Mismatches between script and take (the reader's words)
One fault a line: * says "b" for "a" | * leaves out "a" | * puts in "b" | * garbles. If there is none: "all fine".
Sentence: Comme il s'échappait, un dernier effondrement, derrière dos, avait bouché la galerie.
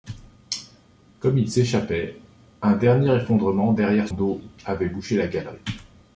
all fine